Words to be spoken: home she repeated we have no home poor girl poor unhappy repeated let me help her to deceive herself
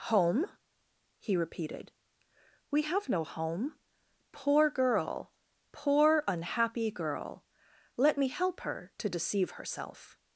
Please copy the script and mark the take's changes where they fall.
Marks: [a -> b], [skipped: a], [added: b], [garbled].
home [she -> he] repeated we have no home poor girl poor unhappy [repeated -> girl] let me help her to deceive herself